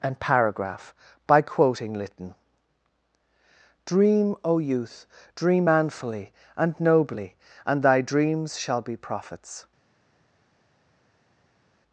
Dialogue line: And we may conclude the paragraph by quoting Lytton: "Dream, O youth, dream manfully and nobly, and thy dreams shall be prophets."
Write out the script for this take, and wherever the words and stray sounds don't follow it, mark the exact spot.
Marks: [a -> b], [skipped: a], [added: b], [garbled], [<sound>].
And [skipped: we may conclude the] paragraph by quoting Lytton: "Dream, O youth, dream manfully and nobly, and thy dreams shall be prophets."